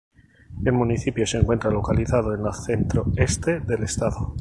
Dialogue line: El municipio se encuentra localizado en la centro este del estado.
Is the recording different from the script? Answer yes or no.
no